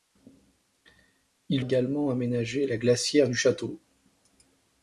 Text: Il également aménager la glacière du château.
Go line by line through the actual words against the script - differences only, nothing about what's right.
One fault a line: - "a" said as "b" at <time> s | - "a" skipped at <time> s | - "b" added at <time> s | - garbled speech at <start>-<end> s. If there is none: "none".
none